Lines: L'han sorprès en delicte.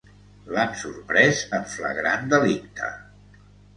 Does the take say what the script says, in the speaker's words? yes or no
no